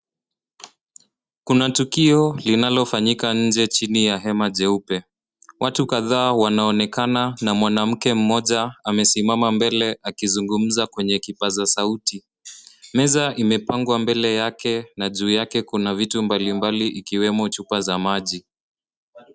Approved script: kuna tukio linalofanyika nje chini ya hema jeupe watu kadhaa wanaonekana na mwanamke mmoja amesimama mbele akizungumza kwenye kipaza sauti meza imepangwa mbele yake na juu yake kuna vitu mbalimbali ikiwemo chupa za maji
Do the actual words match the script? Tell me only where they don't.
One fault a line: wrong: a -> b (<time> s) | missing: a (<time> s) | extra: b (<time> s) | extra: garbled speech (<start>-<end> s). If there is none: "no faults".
no faults